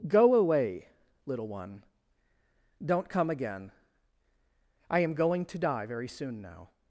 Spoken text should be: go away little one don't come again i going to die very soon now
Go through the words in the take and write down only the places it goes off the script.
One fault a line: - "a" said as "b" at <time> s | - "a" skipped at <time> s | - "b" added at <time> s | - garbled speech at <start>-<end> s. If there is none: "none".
- "am" added at 5.0 s